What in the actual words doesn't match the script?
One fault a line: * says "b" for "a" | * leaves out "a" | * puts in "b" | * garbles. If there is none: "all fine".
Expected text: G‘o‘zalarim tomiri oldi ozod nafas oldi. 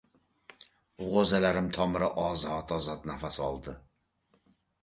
* says "ozod" for "oldi"